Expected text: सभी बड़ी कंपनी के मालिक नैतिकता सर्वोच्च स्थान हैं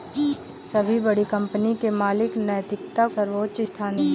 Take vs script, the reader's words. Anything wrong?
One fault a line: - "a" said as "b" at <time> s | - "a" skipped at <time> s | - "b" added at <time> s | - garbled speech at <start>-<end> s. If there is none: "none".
none